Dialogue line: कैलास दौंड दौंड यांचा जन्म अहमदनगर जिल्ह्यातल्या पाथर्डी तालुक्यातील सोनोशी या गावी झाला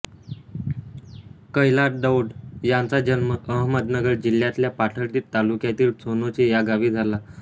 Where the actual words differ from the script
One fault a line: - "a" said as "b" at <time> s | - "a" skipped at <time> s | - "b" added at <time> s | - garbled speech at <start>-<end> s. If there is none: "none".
- "दौंड" skipped at 2.3 s